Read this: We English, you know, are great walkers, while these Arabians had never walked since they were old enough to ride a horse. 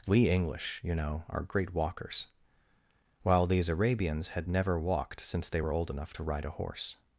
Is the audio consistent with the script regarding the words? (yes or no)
yes